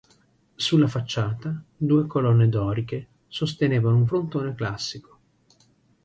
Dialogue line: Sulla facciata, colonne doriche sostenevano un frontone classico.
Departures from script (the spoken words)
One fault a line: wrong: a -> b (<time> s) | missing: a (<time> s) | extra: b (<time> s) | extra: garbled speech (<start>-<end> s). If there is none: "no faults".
extra: due (1.8 s)